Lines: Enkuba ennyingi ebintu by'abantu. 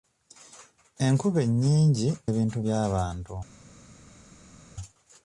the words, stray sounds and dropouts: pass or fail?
pass